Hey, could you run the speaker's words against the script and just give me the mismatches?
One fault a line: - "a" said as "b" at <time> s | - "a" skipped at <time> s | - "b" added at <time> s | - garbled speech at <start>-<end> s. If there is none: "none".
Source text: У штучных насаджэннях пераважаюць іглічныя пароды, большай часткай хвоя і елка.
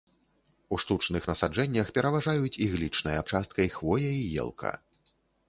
- "пароды большай" skipped at 3.3 s